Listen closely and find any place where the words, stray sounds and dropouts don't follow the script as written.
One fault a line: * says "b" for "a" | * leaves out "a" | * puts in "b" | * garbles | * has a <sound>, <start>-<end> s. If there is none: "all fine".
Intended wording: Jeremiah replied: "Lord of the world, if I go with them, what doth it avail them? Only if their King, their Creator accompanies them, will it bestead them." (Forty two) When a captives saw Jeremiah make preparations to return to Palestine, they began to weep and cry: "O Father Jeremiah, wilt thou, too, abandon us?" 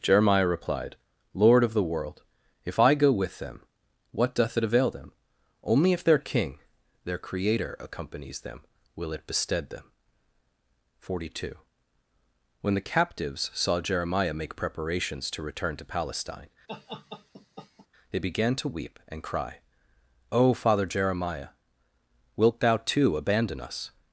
* says "the" for "a"
* has a laugh, 16.7-17.9 s